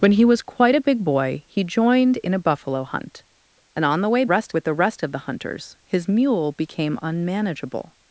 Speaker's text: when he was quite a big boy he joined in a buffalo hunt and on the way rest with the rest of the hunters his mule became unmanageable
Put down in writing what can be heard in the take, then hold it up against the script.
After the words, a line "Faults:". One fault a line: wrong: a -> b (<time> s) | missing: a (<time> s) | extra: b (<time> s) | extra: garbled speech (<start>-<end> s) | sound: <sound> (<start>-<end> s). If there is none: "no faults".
when he was quite a big boy he joined in a buffalo hunt and on the way rest with the rest of the hunters his mule became unmanageable
Faults:
no faults